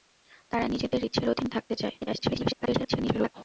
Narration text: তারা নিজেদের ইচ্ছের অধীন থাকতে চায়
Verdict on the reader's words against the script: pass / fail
fail